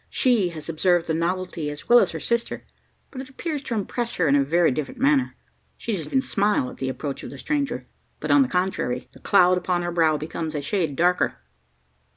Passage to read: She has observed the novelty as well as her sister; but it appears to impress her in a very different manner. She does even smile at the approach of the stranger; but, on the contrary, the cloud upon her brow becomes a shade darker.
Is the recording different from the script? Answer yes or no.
no